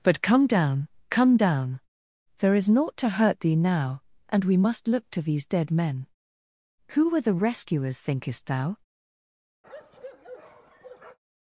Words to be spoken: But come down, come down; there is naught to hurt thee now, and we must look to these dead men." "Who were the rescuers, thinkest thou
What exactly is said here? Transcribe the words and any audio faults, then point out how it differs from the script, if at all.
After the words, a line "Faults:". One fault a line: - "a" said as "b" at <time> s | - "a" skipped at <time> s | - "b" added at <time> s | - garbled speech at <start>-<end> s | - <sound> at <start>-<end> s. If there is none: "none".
But come down, come down; there is naught to hurt thee now, and we must look to these dead men." "Who were the rescuers, thinkest thou
Faults:
- bark at 9.6-11.2 s